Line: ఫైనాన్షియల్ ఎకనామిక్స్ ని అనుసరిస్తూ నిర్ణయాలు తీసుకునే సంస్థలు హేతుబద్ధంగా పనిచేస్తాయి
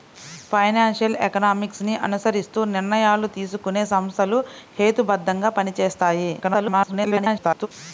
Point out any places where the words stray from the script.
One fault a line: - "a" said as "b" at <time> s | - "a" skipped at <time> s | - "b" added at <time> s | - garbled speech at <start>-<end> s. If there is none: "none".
- garbled speech at 6.4-7.7 s